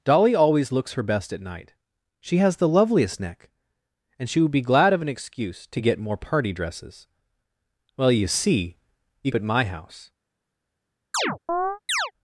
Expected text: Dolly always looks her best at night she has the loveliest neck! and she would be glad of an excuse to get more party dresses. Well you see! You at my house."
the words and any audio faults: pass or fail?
fail